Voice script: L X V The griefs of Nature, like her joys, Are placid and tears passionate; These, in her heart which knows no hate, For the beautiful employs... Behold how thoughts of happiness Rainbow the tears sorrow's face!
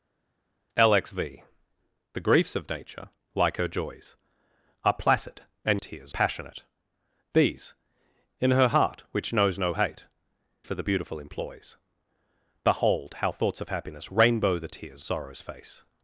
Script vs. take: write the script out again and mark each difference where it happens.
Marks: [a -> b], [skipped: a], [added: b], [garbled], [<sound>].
L X V The griefs of Nature, like her joys, Are placid and tears passionate; These, in her heart which knows no hate, For the beautiful employs... Behold how thoughts of happiness Rainbow the tears sorrow's face!